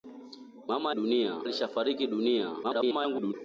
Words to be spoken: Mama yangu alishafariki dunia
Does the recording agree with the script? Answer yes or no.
no